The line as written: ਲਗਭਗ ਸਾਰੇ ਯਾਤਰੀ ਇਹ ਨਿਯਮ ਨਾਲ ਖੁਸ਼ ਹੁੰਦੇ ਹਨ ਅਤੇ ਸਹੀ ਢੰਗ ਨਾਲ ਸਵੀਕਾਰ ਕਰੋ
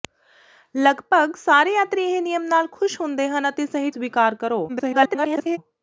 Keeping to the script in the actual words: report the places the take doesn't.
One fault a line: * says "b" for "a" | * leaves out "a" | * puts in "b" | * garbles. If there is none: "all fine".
* leaves out "ਢੰਗ ਨਾਲ"
* garbles